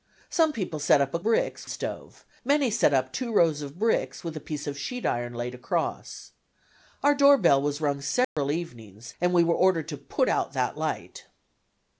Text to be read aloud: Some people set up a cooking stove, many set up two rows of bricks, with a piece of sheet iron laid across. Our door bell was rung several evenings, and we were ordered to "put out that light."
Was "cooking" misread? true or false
true